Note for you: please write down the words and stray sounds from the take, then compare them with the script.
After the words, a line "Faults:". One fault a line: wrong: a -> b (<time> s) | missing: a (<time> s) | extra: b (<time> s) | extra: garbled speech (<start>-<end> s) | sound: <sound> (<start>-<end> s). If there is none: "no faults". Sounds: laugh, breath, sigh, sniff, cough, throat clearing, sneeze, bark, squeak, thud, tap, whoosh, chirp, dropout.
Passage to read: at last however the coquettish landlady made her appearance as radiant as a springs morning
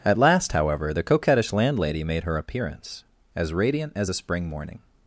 at last however the coquettish landlady made her appearance as radiant as a spring morning
Faults:
wrong: springs -> spring (4.1 s)